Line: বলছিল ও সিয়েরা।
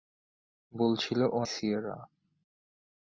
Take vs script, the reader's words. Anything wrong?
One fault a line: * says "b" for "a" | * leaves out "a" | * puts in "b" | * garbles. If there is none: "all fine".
all fine